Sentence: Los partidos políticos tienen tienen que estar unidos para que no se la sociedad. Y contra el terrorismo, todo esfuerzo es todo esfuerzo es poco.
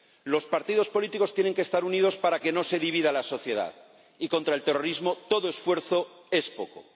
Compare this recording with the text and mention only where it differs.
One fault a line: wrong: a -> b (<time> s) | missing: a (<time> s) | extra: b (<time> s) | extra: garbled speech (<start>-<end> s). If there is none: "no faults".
missing: tienen (1.5 s)
extra: divida (2.8 s)
missing: todo esfuerzo es (6.5 s)